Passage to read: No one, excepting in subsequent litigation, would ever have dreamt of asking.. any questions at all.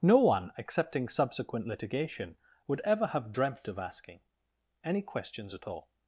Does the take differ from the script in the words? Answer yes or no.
yes